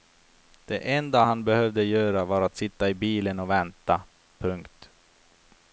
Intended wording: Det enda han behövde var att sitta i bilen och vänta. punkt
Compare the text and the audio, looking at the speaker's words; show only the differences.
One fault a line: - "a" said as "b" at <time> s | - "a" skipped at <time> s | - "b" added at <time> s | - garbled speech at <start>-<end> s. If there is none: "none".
- "göra" added at 1.8 s